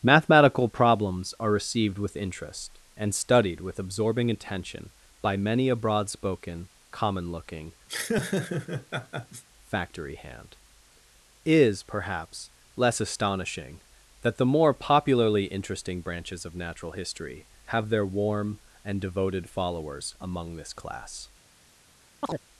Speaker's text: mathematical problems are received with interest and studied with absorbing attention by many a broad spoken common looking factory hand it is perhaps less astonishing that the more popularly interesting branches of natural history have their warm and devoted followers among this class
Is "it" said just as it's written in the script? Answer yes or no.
no